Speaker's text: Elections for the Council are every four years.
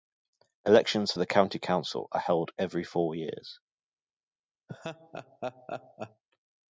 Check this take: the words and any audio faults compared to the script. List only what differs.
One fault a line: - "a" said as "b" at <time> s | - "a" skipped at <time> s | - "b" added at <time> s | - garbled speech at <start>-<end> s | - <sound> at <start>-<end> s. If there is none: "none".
- "County" added at 1.3 s
- "held" added at 2.2 s
- laugh at 4.7-6.2 s